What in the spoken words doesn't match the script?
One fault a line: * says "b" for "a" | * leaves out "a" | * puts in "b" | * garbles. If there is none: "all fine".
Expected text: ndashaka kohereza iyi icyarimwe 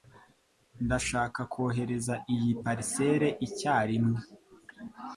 * puts in "parcelle"